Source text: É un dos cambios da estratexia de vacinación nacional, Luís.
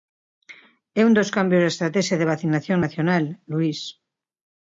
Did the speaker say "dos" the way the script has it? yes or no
yes